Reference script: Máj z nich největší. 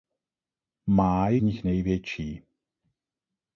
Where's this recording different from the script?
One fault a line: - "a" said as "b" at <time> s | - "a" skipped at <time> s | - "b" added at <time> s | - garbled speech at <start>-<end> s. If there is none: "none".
none